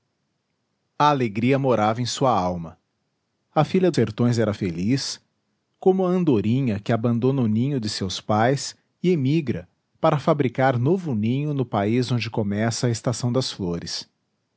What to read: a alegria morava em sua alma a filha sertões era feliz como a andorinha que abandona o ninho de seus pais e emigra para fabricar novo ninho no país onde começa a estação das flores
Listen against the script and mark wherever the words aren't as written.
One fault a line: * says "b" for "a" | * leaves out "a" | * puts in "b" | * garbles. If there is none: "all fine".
all fine